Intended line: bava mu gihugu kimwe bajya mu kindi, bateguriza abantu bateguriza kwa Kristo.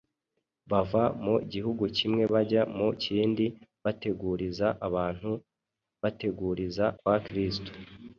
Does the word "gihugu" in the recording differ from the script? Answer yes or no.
no